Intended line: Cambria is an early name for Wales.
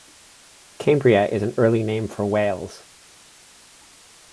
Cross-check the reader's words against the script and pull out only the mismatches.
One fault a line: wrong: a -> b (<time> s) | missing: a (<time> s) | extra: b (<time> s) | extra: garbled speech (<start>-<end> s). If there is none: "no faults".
no faults